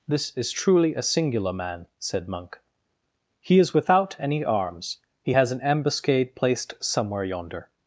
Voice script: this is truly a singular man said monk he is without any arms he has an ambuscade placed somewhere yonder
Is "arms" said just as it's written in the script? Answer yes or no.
yes